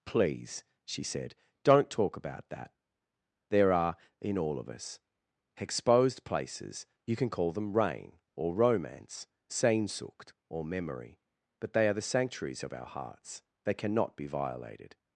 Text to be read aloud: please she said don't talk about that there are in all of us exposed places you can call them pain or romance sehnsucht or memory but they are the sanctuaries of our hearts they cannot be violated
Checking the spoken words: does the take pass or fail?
fail